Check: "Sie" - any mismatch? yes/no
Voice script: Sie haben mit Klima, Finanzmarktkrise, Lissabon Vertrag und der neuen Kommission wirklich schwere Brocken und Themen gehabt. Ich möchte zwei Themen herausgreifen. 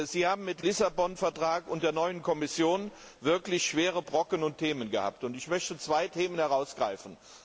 no